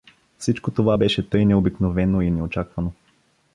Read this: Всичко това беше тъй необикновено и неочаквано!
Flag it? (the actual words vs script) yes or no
no